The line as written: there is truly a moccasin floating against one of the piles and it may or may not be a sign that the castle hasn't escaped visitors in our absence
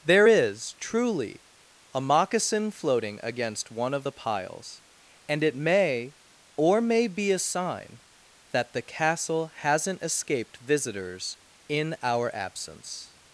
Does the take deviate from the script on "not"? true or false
true